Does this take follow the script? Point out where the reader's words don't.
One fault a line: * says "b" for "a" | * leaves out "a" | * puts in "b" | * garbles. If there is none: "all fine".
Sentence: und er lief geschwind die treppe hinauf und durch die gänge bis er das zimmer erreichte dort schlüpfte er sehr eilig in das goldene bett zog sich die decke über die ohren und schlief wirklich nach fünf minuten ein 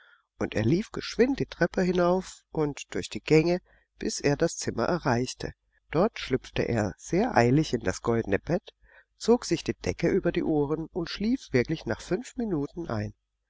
all fine